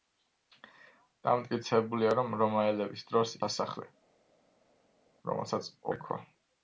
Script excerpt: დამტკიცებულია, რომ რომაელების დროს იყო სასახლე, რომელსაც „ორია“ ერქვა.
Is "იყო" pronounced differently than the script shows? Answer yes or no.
yes